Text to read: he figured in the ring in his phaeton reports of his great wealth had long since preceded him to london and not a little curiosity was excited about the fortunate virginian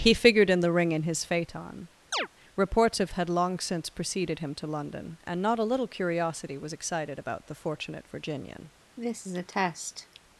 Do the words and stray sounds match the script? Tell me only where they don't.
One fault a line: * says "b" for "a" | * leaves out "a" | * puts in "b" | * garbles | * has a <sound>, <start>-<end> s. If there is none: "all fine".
* has a chirp, 2.1-2.3 s
* leaves out "his great wealth"
* has a cough, 9.0-10.2 s